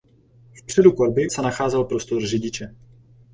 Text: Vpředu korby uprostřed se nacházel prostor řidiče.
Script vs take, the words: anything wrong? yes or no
yes